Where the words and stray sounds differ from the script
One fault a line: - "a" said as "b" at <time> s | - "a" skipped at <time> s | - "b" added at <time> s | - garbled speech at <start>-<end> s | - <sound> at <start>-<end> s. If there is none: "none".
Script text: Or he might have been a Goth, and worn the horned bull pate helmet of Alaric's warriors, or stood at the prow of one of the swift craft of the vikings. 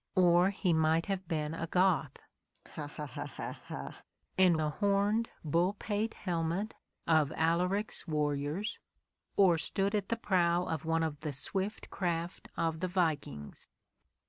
- laugh at 2.5-4.0 s
- "worn" skipped at 4.6 s